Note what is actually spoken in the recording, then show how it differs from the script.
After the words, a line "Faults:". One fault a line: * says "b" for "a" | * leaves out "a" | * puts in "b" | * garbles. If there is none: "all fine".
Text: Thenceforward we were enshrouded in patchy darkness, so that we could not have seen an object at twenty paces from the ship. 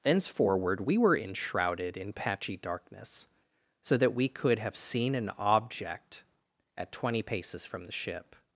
Thenceforward we were enshrouded in patchy darkness, so that we could have seen an object at twenty paces from the ship.
Faults:
* leaves out "not"